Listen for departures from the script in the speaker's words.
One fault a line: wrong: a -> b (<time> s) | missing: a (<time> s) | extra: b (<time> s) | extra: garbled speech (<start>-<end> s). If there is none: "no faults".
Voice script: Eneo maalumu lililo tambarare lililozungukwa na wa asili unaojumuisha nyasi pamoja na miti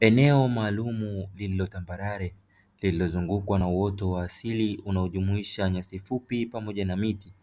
extra: uoto (3.7 s)
extra: fupi (6.0 s)